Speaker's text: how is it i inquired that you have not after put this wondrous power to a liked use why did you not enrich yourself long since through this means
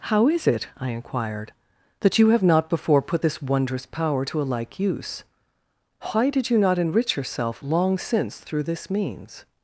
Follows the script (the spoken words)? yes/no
no